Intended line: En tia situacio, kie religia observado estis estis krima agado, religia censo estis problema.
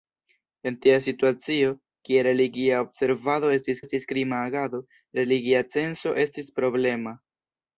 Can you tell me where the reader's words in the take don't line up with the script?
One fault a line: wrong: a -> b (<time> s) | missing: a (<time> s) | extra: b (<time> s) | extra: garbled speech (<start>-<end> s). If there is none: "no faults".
no faults